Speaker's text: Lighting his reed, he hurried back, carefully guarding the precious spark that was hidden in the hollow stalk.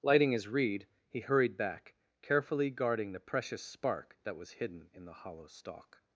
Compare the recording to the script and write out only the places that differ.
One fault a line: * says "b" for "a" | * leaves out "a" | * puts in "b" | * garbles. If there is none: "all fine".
all fine